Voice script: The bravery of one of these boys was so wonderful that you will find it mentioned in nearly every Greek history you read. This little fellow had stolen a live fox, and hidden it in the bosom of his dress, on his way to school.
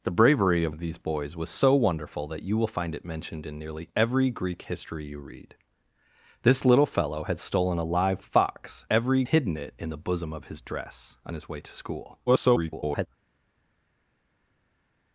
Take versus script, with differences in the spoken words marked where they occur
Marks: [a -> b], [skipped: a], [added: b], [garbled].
The bravery of [skipped: one] of these boys was so wonderful that you will find it mentioned in nearly every Greek history you read. This little fellow had stolen a live fox, [and -> every] hidden it in the bosom of his dress, on his way to school. [garbled]